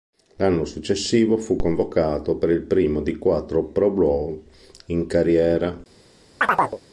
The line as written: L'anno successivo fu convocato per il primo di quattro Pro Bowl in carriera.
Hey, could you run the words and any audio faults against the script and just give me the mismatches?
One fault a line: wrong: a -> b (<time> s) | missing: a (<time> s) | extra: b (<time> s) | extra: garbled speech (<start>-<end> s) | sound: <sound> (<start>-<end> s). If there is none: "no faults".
sound: chirp (6.4-6.8 s)